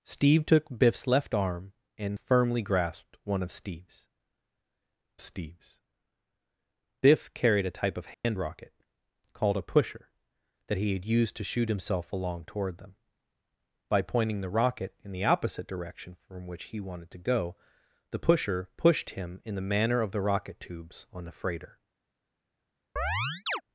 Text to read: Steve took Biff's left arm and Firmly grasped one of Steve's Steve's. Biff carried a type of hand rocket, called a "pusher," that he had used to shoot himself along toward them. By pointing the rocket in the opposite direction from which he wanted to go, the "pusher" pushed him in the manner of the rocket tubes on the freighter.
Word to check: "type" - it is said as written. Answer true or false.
true